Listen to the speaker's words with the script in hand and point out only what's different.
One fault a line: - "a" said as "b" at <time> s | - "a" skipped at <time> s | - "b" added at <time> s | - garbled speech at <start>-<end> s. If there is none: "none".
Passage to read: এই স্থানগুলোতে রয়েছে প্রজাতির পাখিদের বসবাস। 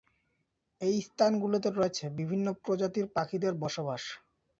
- "বিভিন্ন" added at 2.2 s